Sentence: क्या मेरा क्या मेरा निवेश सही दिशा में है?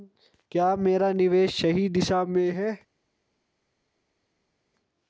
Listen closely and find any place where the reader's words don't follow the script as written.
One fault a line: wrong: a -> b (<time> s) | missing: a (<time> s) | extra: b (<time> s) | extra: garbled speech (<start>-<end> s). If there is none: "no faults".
missing: क्या मेरा (1.1 s)